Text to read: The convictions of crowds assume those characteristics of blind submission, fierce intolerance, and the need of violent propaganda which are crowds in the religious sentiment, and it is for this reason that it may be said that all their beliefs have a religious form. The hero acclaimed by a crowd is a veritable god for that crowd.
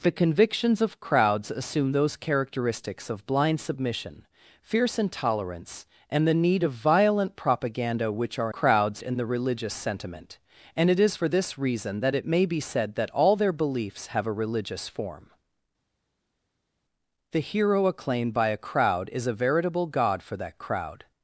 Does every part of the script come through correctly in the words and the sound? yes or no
yes